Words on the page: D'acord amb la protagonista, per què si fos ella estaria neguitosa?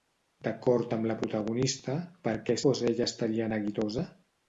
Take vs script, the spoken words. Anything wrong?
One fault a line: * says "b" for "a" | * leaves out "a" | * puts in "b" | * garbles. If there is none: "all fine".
* leaves out "si"